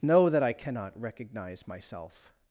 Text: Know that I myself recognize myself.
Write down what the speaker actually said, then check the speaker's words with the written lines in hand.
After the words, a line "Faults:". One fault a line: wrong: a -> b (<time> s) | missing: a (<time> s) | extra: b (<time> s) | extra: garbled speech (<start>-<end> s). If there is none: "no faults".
Know that I cannot recognize myself.
Faults:
wrong: myself -> cannot (0.5 s)